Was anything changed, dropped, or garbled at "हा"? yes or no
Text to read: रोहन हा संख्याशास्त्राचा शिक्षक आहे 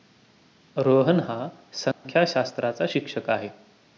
no